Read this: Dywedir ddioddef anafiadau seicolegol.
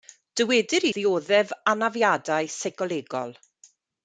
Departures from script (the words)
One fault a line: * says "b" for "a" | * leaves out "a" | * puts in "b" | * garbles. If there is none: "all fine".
all fine